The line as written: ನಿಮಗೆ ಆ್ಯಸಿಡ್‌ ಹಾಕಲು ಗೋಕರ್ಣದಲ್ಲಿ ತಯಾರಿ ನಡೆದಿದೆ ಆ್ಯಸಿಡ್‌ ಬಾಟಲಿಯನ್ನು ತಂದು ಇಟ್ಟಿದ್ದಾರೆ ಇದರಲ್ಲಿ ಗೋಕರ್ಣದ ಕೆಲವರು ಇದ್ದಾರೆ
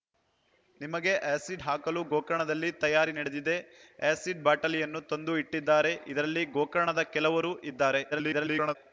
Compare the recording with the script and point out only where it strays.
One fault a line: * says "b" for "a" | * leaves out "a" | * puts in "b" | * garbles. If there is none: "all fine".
* garbles